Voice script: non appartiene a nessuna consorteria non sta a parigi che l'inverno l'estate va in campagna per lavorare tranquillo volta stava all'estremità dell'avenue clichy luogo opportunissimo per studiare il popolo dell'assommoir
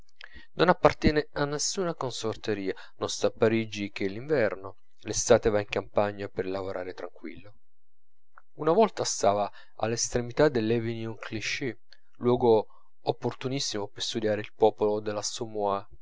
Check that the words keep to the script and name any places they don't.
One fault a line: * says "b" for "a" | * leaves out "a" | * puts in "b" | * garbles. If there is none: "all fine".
* puts in "una"